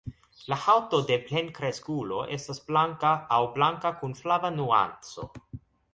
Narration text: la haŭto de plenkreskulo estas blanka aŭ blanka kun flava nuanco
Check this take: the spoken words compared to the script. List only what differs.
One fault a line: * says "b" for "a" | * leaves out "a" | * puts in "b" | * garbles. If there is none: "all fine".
all fine